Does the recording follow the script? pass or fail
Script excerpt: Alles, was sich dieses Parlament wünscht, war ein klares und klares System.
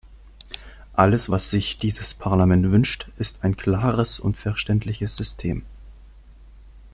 fail